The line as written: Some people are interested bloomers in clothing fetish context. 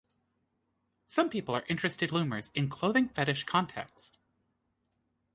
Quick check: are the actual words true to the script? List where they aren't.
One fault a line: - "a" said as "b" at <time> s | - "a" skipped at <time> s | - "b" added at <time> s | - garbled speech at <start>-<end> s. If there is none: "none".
none